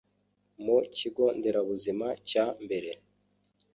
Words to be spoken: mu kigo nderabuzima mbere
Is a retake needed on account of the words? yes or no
yes